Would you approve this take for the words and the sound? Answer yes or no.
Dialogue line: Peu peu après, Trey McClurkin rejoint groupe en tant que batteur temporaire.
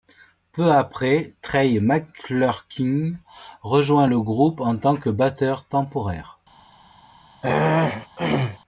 no